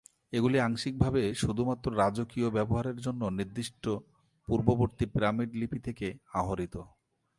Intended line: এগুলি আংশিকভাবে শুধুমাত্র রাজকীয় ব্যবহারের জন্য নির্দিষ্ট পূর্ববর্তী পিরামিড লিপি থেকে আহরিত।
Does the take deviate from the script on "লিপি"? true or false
false